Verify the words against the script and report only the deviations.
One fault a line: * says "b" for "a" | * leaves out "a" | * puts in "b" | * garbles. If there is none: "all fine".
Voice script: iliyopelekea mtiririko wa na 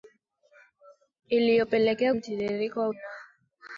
all fine